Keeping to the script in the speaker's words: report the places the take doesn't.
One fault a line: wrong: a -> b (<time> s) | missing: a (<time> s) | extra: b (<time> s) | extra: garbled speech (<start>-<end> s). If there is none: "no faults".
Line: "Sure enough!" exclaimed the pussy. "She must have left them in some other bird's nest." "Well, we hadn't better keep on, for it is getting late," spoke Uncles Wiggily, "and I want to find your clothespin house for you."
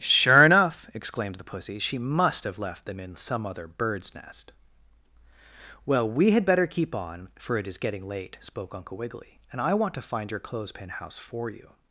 wrong: hadn't -> had (6.3 s)
wrong: Uncles -> Uncle (8.7 s)